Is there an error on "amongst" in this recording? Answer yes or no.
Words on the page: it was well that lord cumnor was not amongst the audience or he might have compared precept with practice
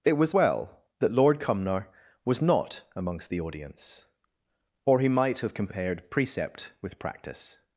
no